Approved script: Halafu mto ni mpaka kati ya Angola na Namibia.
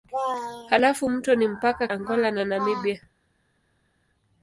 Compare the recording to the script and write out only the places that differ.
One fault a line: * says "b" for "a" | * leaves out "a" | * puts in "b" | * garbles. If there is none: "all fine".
* leaves out "kati ya"